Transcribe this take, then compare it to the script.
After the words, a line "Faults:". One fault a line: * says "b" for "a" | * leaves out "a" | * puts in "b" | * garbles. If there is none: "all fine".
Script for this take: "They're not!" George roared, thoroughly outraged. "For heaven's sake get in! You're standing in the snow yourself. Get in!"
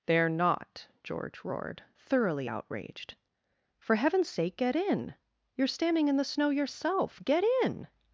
"They're not!" George roared, thoroughly outraged. "For heaven's sake get in! You're standing in the snow yourself. Get in!"
Faults:
all fine